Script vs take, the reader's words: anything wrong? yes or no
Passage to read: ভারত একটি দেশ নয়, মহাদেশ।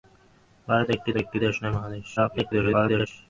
yes